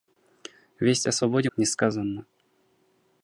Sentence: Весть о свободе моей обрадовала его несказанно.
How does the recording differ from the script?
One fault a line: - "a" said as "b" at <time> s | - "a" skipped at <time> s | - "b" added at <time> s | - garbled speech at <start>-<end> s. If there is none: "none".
- "моей обрадовала его" skipped at 1.5 s